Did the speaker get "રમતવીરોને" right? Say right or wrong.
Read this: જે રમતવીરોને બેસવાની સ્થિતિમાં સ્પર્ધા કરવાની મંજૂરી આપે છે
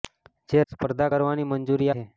wrong